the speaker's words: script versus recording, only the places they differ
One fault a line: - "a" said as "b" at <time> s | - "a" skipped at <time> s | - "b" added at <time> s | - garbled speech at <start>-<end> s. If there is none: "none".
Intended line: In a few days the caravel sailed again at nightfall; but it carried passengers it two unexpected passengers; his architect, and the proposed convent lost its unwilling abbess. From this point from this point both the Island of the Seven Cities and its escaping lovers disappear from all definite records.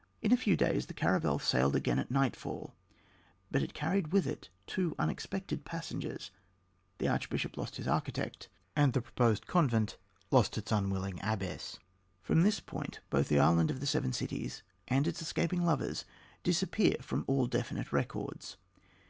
- "passengers" said as "with" at 4.1 s
- "the archbishop lost" added at 7.0 s
- "from this point" skipped at 13.0 s